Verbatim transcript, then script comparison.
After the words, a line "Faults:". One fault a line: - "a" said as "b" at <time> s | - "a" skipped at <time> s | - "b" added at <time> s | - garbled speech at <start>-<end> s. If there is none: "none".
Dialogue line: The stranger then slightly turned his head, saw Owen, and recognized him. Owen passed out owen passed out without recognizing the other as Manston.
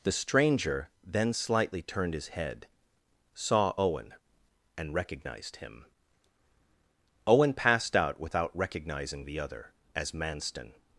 The stranger then slightly turned his head, saw Owen, and recognized him. Owen passed out without recognizing the other as Manston.
Faults:
- "owen passed out" skipped at 8.2 s